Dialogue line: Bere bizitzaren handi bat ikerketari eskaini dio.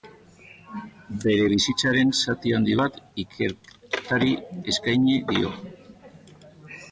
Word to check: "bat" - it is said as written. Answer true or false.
true